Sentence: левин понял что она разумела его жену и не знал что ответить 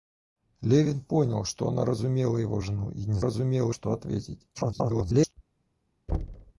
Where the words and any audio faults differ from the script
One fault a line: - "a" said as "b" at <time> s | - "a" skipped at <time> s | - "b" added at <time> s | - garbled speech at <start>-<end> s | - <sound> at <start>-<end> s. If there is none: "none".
- "знал" said as "разумела" at 3.2 s
- garbled speech at 4.5-5.3 s
- thud at 6.1-6.5 s